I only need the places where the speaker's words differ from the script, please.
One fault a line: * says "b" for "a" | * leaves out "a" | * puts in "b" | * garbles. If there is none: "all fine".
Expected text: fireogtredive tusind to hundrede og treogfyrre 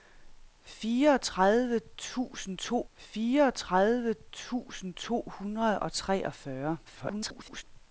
* puts in "fireogtredive tusind to"
* garbles